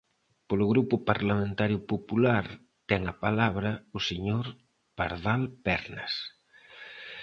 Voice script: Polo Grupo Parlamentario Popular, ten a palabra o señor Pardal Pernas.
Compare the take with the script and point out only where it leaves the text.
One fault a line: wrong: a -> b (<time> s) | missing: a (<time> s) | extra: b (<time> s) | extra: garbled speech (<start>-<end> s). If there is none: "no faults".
no faults